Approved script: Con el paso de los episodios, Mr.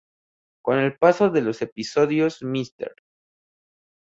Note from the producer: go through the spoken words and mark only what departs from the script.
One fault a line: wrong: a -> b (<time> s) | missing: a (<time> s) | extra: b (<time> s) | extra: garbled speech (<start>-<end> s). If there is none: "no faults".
no faults